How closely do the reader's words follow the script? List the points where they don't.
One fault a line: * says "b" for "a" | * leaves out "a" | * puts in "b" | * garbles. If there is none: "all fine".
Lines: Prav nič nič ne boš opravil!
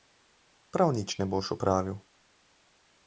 * leaves out "nič"